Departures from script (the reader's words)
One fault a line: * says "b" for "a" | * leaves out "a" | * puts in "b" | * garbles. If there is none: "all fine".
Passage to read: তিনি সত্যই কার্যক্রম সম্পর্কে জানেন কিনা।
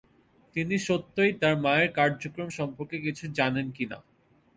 * puts in "তার মায়ের"
* puts in "কিছু"